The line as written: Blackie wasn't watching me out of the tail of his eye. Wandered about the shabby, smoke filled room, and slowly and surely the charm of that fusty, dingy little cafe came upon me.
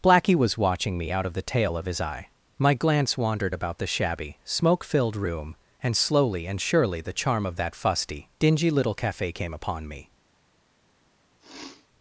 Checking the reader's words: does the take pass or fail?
fail